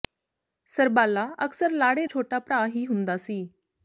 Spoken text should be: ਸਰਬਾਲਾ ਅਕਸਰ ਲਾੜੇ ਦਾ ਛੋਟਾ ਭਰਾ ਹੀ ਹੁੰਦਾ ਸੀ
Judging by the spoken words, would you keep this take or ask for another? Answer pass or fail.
fail